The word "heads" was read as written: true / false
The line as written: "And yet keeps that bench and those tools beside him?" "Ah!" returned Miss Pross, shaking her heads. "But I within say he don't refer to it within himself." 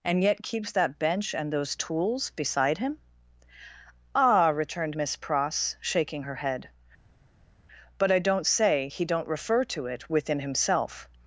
false